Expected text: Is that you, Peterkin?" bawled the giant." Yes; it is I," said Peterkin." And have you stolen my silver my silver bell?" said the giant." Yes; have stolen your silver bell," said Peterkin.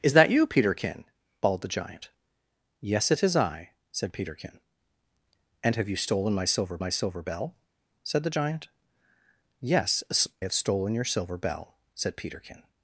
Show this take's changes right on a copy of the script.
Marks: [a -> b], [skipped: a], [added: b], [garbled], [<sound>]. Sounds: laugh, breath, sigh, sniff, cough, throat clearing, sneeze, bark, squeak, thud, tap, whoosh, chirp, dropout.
Is that you, Peterkin?" bawled the giant." Yes; it is I," said Peterkin." And have you stolen my silver my silver bell?" said the giant." Yes; have stolen your silver bell," said Peterkin.